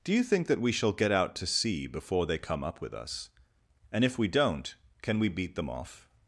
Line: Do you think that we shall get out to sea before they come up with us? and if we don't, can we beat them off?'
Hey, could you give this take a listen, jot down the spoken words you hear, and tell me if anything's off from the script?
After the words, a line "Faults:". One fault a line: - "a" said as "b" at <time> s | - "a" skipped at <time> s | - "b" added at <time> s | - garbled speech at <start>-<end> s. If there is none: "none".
Do you think that we shall get out to sea before they come up with us? and if we don't, can we beat them off?'
Faults:
none